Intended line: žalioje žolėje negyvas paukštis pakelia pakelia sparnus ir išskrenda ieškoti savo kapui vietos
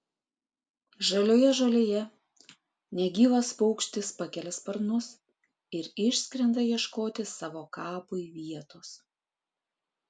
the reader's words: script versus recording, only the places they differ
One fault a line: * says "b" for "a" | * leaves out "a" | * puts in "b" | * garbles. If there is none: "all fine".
* leaves out "pakelia"